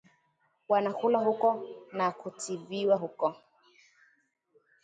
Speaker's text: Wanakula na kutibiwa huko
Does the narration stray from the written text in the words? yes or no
yes